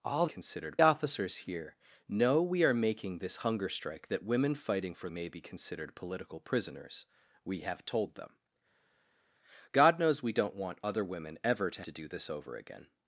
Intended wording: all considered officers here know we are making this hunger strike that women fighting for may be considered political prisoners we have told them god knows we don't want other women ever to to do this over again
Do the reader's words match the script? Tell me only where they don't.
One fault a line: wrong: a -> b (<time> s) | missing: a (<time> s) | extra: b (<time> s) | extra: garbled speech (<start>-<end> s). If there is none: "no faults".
no faults